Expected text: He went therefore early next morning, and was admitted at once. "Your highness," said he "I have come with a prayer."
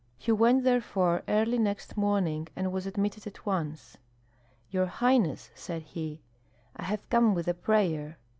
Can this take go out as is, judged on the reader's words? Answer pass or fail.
pass